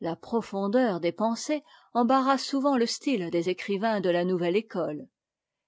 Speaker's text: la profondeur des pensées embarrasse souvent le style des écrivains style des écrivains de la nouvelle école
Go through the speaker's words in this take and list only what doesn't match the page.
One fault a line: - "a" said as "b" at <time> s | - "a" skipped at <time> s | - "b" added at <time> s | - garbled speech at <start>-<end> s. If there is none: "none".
- "style des écrivains" skipped at 4.0 s